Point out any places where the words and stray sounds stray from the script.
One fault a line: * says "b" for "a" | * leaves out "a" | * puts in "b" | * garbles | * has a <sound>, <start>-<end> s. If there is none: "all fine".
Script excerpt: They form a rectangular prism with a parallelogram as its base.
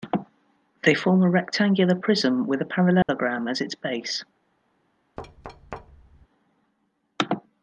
* has a dropout, 3.0-3.1 s
* has a thud, 5.2-6.3 s